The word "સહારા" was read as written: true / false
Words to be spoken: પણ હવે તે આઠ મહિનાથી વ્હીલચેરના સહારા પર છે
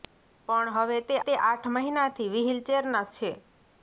false